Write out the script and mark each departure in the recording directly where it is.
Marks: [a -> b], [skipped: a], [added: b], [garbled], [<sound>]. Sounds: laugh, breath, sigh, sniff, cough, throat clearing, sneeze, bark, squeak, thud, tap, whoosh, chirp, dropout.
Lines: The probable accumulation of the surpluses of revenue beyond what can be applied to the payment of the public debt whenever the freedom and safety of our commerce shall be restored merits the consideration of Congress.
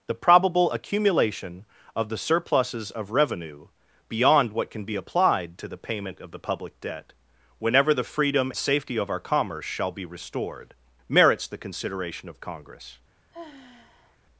The probable accumulation of the surpluses of revenue beyond what can be applied to the payment of the public debt whenever the freedom [skipped: and] safety of our commerce shall be restored merits the consideration of Congress. [sigh]